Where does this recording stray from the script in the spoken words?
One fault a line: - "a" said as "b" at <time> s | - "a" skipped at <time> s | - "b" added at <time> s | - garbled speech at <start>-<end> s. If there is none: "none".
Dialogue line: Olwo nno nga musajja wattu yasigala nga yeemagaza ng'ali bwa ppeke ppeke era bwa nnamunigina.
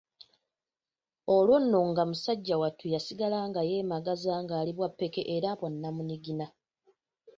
- "ppeke" skipped at 5.2 s